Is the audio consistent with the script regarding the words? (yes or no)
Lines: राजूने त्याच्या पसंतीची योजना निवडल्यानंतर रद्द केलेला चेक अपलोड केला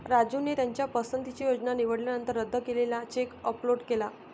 yes